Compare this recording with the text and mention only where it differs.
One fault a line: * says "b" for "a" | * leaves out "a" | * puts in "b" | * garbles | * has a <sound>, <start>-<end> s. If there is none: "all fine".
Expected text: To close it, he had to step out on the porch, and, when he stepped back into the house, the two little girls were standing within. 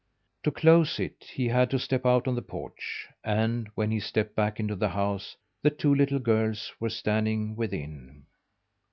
all fine